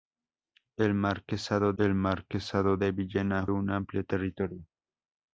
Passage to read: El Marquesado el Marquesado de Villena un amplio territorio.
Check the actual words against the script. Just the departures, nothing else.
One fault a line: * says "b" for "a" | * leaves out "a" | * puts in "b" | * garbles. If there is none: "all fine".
all fine